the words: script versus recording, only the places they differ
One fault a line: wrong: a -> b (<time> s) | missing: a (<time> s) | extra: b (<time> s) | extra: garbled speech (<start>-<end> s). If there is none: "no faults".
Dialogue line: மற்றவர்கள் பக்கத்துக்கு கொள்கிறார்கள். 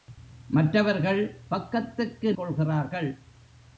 no faults